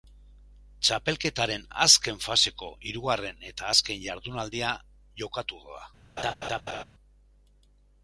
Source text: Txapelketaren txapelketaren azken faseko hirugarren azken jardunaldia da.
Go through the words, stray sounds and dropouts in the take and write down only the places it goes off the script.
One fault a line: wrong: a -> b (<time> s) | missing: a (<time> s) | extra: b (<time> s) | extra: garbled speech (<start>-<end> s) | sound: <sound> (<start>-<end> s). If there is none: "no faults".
missing: txapelketaren (1.6 s)
extra: eta (3.5 s)
extra: jokatuko (5.2 s)
sound: laugh (6.2-6.8 s)